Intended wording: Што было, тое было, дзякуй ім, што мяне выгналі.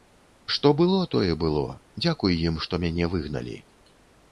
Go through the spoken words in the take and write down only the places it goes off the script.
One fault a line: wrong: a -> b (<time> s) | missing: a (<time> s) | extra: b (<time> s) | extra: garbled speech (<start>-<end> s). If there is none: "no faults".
no faults